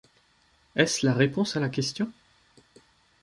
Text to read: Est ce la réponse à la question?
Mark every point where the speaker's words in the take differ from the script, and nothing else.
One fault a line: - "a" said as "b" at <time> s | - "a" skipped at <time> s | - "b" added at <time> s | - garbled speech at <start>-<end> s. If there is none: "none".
none